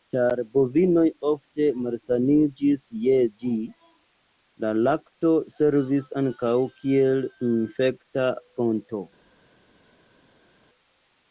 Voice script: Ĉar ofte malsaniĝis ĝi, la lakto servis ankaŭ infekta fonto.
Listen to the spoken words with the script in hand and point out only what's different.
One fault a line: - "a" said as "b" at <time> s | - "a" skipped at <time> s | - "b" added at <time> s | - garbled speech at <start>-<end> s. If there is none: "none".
- "bovinoj" added at 0.5 s
- "je" added at 3.0 s
- "kiel" added at 6.8 s